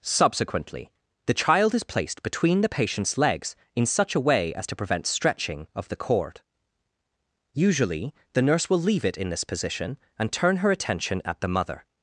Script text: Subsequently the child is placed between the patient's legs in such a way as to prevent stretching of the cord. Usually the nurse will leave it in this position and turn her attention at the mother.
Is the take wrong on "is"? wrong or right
right